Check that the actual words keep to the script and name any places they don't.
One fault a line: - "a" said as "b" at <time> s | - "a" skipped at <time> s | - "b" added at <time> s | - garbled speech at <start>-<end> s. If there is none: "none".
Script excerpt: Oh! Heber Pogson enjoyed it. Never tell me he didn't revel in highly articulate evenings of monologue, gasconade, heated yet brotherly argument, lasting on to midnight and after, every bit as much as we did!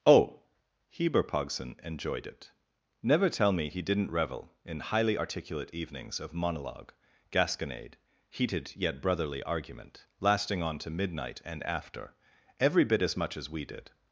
none